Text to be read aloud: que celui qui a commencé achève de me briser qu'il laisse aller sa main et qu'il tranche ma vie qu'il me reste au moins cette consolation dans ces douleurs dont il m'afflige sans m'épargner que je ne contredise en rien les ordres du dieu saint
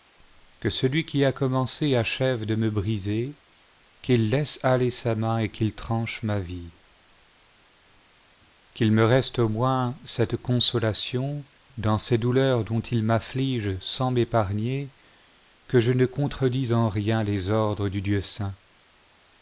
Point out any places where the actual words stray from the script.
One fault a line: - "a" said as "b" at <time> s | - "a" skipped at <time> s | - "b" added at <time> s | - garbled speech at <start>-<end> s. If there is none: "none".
none